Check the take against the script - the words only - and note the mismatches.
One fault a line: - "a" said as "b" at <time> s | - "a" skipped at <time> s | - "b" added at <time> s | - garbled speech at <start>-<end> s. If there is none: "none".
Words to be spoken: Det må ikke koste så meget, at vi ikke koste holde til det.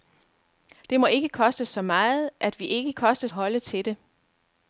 none